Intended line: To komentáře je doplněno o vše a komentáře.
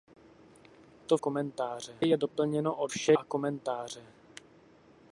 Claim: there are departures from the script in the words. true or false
false